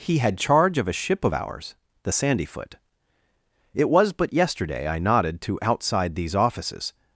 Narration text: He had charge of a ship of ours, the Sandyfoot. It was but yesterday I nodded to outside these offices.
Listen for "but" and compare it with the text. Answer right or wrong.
right